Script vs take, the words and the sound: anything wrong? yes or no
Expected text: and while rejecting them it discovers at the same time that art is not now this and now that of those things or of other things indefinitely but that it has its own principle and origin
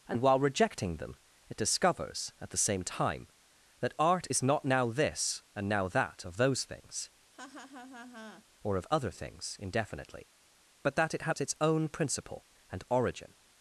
yes